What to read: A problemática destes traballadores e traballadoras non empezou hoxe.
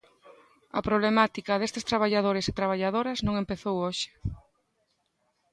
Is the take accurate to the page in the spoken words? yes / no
yes